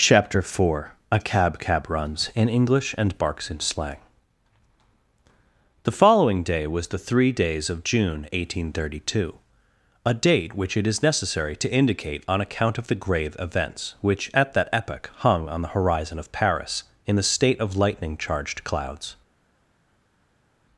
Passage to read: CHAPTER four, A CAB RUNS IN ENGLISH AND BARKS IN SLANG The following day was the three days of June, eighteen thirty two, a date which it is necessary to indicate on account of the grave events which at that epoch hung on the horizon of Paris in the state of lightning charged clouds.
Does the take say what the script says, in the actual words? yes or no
no